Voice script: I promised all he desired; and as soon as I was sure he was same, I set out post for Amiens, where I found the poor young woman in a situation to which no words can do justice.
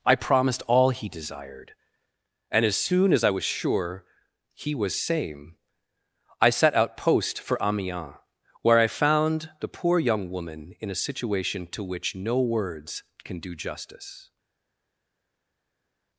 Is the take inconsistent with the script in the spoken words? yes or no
no